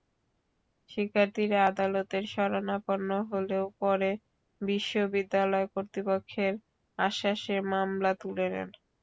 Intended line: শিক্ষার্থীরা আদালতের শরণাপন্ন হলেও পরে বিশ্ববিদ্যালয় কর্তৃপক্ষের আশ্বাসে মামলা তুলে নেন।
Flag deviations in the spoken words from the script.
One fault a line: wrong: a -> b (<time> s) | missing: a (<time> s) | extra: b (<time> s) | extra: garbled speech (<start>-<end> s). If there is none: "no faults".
no faults